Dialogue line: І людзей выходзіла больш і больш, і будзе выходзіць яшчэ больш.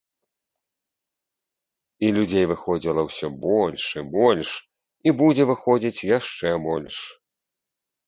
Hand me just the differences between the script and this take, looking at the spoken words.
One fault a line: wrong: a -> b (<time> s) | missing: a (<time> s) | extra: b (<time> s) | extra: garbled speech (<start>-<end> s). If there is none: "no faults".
extra: ўсё (3.1 s)